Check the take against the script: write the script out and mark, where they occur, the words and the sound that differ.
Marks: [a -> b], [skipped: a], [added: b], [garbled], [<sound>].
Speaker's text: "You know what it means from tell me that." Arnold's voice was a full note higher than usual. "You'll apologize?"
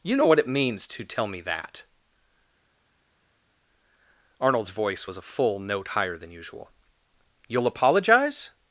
"You know what it means [from -> to] tell me that." Arnold's voice was a full note higher than usual. "You'll apologize?"